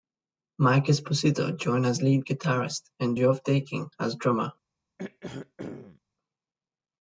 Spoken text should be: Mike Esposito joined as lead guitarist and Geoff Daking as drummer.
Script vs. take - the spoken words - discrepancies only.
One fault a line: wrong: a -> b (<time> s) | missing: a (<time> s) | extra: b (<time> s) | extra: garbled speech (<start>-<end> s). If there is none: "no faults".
no faults